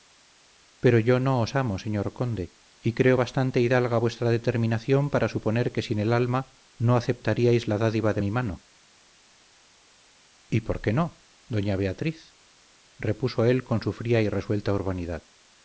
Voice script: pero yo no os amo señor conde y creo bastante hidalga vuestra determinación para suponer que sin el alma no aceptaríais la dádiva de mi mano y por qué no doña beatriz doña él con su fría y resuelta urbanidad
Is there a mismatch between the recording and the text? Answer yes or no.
yes